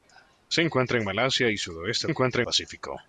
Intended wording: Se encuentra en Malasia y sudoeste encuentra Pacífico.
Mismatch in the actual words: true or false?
false